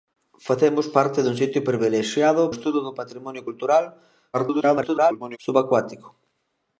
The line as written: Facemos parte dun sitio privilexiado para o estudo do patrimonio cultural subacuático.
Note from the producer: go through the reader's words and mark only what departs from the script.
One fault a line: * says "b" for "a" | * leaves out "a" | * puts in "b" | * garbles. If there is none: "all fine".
* leaves out "para"
* garbles